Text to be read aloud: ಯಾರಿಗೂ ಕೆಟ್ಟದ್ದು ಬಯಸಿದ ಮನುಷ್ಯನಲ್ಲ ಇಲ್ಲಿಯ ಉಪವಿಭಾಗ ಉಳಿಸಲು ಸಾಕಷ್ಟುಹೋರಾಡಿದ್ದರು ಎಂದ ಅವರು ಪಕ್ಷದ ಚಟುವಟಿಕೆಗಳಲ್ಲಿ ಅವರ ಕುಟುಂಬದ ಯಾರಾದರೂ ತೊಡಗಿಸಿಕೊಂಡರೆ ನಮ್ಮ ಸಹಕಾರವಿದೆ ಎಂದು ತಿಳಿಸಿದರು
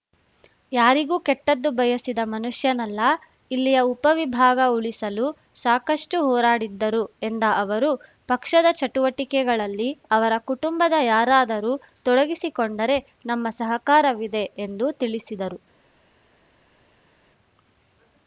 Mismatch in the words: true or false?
false